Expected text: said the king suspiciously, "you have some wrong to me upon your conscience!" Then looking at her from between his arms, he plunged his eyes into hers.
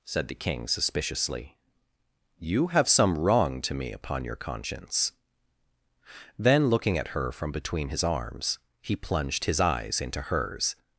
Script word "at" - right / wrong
right